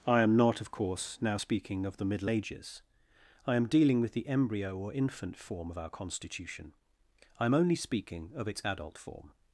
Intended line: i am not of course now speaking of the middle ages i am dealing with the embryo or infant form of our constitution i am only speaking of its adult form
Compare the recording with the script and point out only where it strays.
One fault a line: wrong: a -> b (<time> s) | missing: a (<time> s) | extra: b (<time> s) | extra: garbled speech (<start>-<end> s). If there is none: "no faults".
no faults